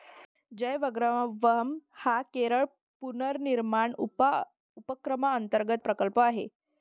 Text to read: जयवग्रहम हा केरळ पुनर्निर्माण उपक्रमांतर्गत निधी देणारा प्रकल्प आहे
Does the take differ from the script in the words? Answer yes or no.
yes